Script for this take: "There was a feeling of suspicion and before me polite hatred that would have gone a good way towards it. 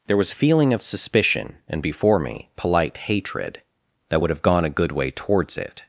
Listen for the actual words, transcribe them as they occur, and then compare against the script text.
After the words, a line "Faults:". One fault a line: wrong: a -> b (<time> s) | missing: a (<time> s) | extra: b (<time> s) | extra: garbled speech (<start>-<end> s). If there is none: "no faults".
"There was feeling of suspicion and before me polite hatred that would have gone a good way towards it.
Faults:
missing: a (0.3 s)